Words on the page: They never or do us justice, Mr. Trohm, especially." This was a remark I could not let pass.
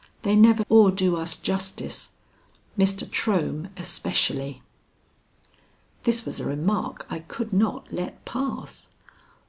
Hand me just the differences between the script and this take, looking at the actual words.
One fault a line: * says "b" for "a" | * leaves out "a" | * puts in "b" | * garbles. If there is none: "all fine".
all fine